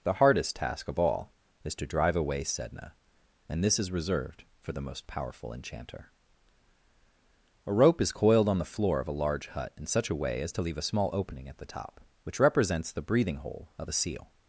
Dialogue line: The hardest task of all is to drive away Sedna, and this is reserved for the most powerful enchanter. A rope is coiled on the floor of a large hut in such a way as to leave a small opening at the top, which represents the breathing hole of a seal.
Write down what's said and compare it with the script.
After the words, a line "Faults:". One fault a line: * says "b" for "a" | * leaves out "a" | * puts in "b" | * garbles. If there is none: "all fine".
The hardest task of all is to drive away Sedna, and this is reserved for the most powerful enchanter. A rope is coiled on the floor of a large hut in such a way as to leave a small opening at the top, which represents the breathing hole of a seal.
Faults:
all fine